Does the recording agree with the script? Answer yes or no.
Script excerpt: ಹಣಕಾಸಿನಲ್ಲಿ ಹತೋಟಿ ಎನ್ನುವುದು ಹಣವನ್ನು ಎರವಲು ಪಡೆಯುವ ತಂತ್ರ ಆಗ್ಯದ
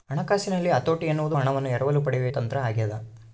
yes